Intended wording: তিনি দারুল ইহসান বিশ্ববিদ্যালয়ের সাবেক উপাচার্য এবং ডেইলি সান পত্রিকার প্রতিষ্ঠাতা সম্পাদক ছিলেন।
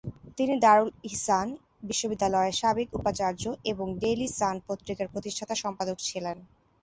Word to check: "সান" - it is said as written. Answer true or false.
true